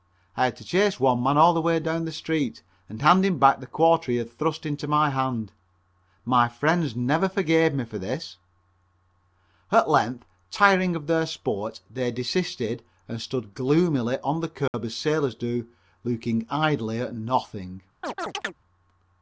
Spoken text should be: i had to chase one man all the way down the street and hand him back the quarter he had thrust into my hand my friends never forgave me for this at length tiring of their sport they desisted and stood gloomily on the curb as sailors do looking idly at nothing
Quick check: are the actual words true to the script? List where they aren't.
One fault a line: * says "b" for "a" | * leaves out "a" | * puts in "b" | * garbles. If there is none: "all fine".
all fine